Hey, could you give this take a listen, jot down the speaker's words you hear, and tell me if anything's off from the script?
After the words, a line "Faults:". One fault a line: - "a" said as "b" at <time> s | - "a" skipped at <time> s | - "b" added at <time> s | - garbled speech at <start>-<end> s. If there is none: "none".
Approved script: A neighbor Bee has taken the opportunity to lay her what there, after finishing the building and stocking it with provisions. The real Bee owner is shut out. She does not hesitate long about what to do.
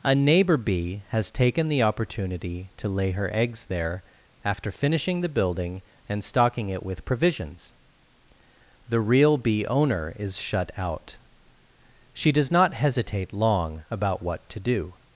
A neighbor Bee has taken the opportunity to lay her eggs there, after finishing the building and stocking it with provisions. The real Bee owner is shut out. She does not hesitate long about what to do.
Faults:
- "what" said as "eggs" at 3.3 s